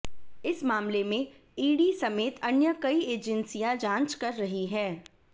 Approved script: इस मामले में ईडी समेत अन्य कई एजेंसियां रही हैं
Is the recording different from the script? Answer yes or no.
yes